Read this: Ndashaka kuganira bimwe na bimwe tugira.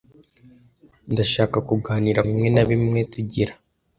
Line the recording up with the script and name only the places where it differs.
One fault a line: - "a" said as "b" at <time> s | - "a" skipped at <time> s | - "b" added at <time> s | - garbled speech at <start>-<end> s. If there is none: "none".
none